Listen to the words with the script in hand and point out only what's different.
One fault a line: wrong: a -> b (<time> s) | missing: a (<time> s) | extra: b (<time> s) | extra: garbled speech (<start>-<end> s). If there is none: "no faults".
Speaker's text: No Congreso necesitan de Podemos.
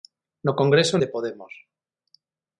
missing: necesitan (1.0 s)